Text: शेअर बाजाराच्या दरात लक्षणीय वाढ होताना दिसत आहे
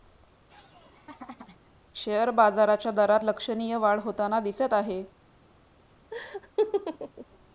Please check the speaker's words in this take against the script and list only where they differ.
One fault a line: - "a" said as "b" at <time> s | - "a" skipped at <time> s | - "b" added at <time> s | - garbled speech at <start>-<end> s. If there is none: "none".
none